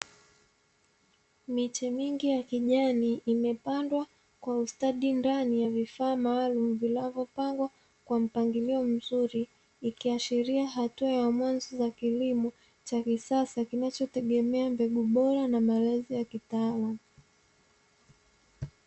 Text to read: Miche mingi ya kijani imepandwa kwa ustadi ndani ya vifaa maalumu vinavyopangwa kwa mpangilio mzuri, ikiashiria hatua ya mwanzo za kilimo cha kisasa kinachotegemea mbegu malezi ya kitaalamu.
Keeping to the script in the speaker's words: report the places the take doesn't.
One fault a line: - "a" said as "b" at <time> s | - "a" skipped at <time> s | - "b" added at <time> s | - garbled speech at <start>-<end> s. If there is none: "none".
- "bora na" added at 15.0 s